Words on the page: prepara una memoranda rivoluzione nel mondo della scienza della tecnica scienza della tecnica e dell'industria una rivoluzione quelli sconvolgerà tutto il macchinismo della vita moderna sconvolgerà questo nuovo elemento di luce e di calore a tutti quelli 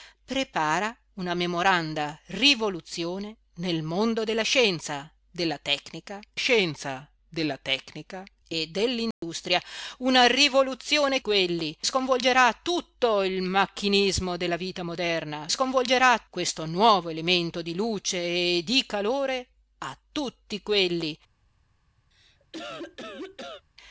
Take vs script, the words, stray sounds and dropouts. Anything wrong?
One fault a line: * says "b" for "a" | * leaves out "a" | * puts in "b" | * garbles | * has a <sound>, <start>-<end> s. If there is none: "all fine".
* has a dropout, 9.1-9.2 s
* has a cough, 22.1-23.7 s